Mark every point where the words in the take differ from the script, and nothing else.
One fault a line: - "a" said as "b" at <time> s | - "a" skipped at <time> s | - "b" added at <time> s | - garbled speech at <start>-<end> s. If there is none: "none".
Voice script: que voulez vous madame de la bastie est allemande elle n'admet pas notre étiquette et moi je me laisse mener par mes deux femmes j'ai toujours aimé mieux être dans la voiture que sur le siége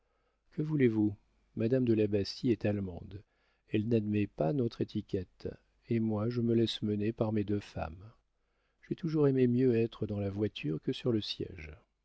none